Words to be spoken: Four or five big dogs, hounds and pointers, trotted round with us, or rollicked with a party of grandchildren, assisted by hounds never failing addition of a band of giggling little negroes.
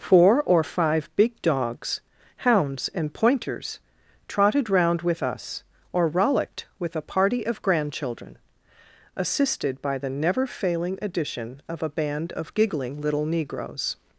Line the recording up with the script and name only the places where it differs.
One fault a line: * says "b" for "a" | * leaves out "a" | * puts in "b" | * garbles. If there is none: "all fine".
* says "the" for "hounds"